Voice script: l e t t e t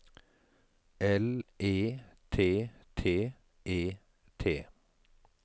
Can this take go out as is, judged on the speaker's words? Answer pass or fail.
pass